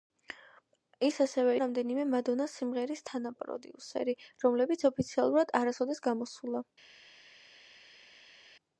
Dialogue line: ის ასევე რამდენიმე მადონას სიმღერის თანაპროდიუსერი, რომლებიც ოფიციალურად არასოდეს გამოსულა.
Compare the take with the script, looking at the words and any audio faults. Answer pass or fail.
pass